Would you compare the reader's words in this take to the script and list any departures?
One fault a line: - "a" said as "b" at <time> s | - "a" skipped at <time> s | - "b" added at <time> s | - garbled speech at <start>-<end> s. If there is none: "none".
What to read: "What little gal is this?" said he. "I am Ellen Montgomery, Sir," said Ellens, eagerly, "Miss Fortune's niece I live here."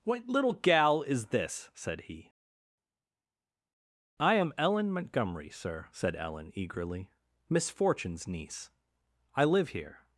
- "Ellens" said as "Ellen" at 6.2 s